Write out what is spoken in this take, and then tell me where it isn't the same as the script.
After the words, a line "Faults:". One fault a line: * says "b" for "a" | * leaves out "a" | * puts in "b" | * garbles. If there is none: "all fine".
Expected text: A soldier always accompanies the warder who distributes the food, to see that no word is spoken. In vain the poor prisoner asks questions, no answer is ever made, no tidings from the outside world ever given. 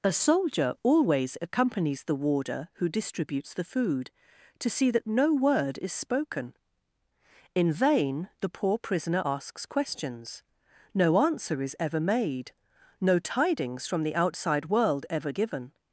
A soldier always accompanies the warder who distributes the food, to see that no word is spoken. In vain the poor prisoner asks questions, no answer is ever made, no tidings from the outside world ever given.
Faults:
all fine